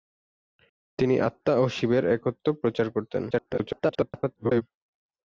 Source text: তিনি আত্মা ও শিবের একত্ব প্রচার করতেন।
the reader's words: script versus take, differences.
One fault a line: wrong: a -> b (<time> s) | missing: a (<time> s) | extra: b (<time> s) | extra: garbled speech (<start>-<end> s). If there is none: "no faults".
extra: garbled speech (3.3-4.6 s)